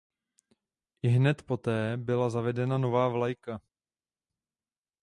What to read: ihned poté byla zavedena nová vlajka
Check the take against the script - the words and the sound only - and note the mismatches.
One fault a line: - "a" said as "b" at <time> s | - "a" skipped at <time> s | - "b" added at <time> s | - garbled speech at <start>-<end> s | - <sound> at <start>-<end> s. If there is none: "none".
none